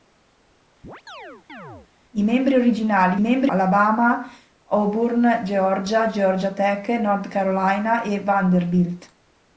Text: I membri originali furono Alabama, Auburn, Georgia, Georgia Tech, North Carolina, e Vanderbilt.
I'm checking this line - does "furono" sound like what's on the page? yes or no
no